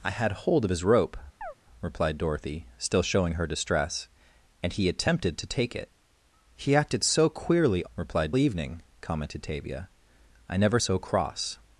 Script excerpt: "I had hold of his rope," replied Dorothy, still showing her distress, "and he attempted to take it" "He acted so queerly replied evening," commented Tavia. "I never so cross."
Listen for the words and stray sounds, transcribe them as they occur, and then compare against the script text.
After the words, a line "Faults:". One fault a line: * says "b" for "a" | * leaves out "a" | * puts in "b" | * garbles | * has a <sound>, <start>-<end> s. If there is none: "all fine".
"I had hold of his rope," replied Dorothy, still showing her distress, "and he attempted to take it" "He acted so queerly replied evening," commented Tavia. "I never so cross."
Faults:
* has a chirp, 1.4-1.5 s